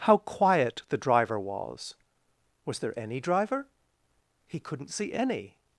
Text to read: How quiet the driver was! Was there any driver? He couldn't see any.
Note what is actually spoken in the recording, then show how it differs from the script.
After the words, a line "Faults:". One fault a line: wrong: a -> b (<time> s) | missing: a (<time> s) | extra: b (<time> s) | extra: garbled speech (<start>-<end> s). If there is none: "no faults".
How quiet the driver was! Was there any driver? He couldn't see any.
Faults:
no faults